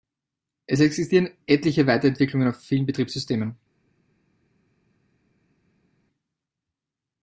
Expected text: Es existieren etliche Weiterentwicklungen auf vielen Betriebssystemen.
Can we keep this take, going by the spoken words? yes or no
yes